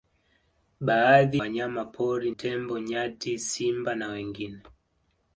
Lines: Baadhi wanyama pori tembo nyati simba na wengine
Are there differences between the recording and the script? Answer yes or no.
no